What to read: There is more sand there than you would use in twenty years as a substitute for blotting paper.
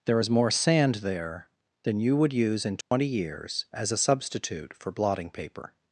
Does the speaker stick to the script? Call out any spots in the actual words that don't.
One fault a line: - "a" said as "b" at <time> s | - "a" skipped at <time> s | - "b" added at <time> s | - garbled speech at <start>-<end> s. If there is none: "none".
none